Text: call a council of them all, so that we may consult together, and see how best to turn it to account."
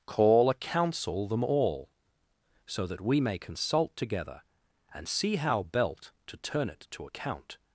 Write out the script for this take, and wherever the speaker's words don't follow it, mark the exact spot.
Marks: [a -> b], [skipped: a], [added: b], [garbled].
call a council [skipped: of] them all, so that we may consult together, and see how [best -> belt] to turn it to account."